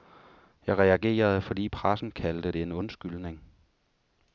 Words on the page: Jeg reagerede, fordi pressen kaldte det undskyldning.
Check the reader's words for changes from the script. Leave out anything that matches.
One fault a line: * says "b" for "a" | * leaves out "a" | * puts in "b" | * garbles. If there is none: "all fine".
* puts in "en"